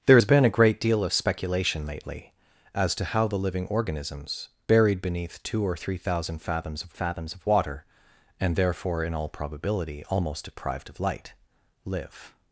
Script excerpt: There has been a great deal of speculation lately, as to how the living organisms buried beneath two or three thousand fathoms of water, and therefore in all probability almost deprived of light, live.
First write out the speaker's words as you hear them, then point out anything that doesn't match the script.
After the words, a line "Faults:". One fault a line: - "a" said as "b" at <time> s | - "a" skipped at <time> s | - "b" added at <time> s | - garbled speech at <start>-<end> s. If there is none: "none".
There has been a great deal of speculation lately, as to how the living organisms buried beneath two or three thousand fathoms of fathoms of water, and therefore in all probability almost deprived of light, live.
Faults:
- "fathoms of" added at 6.9 s